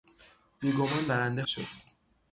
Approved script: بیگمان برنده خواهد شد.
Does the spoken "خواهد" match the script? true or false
false